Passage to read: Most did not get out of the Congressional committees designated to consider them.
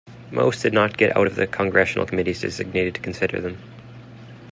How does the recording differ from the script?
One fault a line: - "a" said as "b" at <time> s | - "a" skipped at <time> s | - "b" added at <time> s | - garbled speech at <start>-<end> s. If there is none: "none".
none